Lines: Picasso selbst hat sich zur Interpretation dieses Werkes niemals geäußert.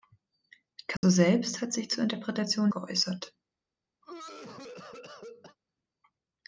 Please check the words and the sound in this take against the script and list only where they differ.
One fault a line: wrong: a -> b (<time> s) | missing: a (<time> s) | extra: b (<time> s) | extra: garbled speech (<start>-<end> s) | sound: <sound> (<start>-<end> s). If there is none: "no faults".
sound: dropout (1.0-1.0 s)
missing: dieses Werkes niemals (2.7 s)
sound: cough (4.0-5.6 s)